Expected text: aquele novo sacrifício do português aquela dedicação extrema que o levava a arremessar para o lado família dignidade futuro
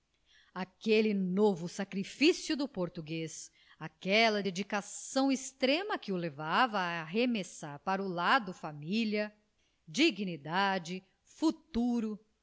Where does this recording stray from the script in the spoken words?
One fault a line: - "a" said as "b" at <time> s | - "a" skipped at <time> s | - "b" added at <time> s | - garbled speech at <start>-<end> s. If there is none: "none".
none